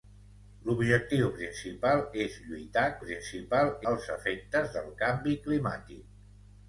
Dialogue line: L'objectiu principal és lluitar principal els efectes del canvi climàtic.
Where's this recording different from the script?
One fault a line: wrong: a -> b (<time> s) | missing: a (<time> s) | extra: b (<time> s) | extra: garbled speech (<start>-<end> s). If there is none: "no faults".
no faults